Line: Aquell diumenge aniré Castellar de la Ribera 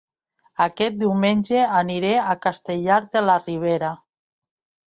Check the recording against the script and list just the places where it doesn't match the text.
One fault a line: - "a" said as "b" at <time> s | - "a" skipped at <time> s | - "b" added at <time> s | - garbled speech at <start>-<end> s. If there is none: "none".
- "Aquell" said as "Aquest" at 0.6 s
- "a" added at 2.2 s